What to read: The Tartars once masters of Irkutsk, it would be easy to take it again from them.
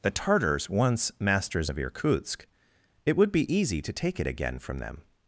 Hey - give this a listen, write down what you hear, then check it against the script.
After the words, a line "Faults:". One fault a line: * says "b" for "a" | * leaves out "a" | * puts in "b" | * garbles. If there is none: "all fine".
The Tartars once masters of Irkutsk, it would be easy to take it again from them.
Faults:
all fine